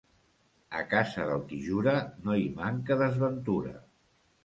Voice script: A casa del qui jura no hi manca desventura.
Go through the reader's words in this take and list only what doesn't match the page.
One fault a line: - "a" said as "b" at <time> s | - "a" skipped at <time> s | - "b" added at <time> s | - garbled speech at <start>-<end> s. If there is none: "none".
none